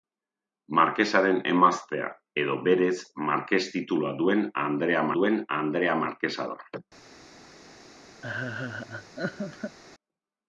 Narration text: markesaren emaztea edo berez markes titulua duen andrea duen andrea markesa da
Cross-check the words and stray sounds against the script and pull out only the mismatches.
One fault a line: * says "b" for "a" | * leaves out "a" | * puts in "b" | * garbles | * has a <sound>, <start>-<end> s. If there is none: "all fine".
* has a laugh, 8.2-9.8 s